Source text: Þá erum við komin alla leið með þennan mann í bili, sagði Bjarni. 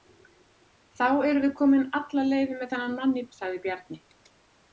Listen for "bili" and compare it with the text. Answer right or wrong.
wrong